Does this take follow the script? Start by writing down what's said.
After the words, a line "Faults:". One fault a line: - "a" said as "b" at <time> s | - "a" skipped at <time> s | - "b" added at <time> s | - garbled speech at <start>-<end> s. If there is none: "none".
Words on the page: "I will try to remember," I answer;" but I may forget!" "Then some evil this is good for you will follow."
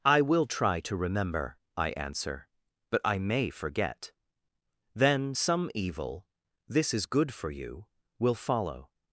"I will try to remember," I answer;" but I may forget!" "Then some evil this is good for you will follow."
Faults:
none